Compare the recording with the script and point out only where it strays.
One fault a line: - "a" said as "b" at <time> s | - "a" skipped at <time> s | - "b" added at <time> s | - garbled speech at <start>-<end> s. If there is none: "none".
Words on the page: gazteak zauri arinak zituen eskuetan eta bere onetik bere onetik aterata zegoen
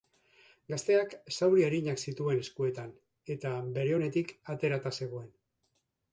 - "bere onetik" skipped at 4.3 s